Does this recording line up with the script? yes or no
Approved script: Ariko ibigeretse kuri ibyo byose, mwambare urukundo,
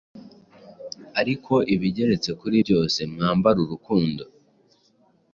no